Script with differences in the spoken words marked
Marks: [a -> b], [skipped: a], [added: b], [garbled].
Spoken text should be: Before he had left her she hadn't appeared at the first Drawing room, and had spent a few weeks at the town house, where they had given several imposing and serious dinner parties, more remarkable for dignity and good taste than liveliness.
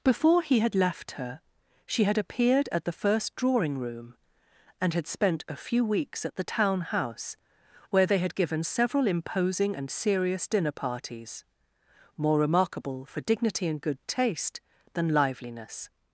Before he had left her she [hadn't -> had] appeared at the first Drawing room, and had spent a few weeks at the town house, where they had given several imposing and serious dinner parties, more remarkable for dignity and good taste than liveliness.